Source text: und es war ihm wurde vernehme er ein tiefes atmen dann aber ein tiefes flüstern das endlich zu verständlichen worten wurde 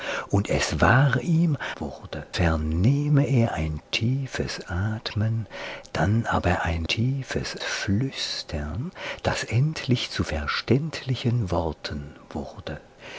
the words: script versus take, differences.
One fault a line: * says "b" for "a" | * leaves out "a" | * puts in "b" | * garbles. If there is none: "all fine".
all fine